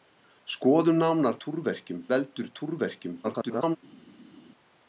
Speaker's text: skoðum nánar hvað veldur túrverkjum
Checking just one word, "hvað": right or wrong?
wrong